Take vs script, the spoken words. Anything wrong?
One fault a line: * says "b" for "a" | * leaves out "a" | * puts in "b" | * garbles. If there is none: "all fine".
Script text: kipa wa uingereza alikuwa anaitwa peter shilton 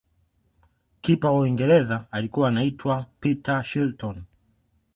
all fine